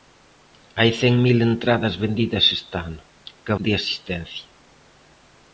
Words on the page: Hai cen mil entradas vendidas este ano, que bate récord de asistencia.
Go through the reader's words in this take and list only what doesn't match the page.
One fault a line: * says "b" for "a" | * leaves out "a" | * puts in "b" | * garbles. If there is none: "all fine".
* leaves out "bate récord"